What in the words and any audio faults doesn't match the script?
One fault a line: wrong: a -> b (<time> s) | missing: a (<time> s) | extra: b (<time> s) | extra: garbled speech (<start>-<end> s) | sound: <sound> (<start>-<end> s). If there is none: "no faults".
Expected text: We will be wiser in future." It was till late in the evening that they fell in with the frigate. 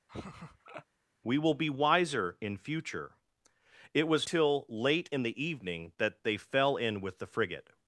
sound: laugh (0.1-0.8 s)